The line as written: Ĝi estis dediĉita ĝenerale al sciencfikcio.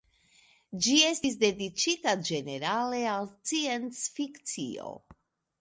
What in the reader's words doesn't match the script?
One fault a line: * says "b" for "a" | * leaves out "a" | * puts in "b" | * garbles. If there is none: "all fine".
all fine